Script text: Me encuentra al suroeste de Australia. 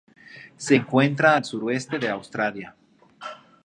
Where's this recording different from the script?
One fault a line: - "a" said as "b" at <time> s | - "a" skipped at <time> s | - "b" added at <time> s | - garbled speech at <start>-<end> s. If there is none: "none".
- "Me" said as "Se" at 0.6 s